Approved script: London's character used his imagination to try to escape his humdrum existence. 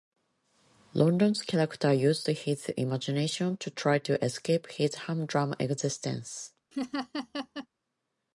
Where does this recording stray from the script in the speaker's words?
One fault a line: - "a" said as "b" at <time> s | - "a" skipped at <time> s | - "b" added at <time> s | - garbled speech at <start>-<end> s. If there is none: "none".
none